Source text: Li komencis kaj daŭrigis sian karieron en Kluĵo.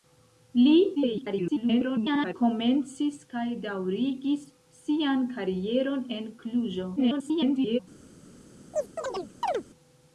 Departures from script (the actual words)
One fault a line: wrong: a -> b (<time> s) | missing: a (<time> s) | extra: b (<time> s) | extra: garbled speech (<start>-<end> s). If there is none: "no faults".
extra: garbled speech (0.9-2.3 s)
extra: garbled speech (7.0-7.8 s)